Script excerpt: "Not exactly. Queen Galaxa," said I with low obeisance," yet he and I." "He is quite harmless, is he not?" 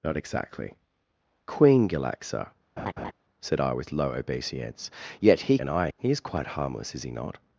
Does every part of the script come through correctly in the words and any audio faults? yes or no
no